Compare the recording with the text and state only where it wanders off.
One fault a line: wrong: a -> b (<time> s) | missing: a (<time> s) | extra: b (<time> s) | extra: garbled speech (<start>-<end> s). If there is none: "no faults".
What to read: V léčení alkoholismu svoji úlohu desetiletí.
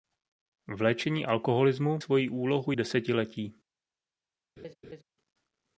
no faults